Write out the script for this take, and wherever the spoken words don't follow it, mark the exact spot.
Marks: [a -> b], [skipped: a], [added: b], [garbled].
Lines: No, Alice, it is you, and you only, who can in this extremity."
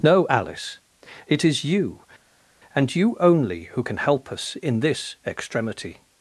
No, Alice, it is you, and you only, who can [added: help us] in this extremity."